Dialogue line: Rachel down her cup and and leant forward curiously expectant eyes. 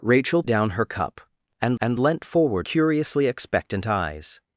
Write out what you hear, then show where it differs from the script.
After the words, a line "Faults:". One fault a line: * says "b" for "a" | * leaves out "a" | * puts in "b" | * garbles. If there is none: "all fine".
Rachel down her cup and and leant forward curiously expectant eyes.
Faults:
all fine